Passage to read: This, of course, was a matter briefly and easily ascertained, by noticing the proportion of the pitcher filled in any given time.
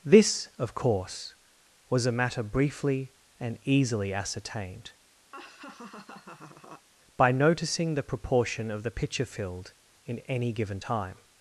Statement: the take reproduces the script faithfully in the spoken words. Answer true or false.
true